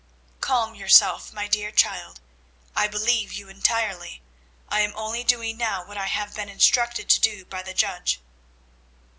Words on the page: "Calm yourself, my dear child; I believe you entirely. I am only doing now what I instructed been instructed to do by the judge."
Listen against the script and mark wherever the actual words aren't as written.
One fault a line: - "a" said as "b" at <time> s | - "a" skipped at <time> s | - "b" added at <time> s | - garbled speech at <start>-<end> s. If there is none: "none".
- "instructed" said as "have" at 6.1 s